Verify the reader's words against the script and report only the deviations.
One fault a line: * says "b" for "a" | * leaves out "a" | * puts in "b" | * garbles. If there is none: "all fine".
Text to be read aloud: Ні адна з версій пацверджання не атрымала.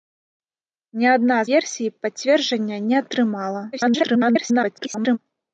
* leaves out "з"
* garbles